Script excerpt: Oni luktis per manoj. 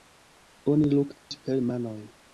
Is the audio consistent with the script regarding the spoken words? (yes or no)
yes